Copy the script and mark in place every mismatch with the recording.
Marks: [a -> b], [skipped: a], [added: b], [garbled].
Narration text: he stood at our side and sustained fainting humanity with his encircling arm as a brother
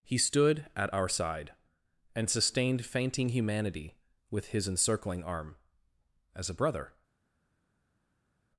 he stood at our side and sustained fainting humanity with his encircling arm as a brother